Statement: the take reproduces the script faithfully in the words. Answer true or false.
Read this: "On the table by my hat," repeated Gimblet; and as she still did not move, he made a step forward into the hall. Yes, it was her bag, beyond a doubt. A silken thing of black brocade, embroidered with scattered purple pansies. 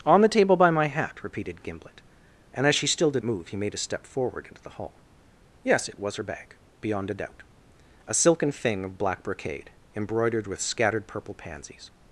false